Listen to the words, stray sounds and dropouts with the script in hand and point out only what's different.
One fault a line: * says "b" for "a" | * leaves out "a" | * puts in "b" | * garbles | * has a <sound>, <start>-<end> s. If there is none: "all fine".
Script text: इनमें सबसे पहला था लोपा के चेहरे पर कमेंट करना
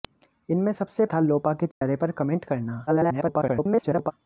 * leaves out "पहला"
* has a dropout, 1.7-1.8 s
* garbles